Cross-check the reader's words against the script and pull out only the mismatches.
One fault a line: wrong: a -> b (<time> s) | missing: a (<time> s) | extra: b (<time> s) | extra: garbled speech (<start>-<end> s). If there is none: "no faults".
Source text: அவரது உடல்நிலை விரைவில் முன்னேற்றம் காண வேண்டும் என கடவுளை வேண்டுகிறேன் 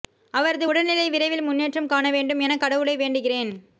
no faults